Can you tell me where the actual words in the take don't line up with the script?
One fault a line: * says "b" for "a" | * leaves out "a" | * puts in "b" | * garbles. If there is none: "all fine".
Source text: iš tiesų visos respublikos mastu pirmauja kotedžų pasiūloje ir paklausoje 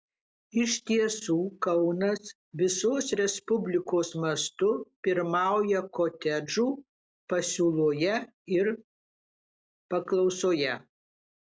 * puts in "kaunas"